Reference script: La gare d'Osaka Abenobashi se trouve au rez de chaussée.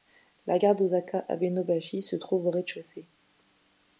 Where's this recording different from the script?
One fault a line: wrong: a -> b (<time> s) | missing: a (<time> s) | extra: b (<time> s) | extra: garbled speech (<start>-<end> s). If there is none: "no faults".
no faults